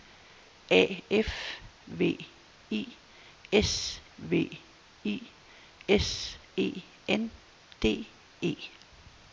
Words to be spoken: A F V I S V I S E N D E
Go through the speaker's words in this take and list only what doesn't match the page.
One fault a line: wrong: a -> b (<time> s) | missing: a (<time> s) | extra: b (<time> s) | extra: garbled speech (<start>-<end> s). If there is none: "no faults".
no faults